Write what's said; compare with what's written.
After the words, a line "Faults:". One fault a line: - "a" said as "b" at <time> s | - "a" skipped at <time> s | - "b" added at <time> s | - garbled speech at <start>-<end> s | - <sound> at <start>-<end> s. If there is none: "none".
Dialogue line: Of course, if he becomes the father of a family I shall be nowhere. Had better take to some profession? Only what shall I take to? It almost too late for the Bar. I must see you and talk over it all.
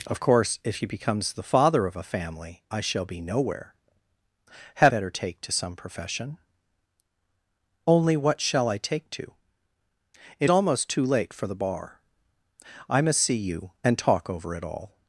Of course, if he becomes the father of a family I shall be nowhere. Had better take to some profession? Only what shall I take to? It almost too late for the Bar. I must see you and talk over it all.
Faults:
none